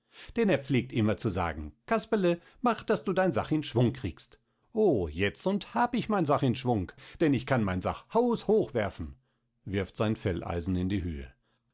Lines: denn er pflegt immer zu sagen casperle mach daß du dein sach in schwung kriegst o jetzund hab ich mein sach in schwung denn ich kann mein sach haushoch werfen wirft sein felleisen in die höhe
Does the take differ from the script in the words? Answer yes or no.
no